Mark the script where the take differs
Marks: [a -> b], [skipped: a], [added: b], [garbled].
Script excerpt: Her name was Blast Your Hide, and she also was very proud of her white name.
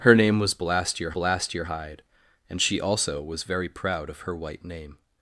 Her name was Blast Your [added: Blast Your] Hide, and she also was very proud of her white name.